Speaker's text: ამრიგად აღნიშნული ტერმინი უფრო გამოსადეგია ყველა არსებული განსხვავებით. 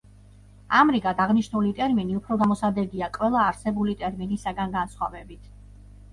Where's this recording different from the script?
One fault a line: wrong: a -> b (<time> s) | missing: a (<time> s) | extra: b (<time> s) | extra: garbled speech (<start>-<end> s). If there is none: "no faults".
extra: ტერმინისაგან (4.1 s)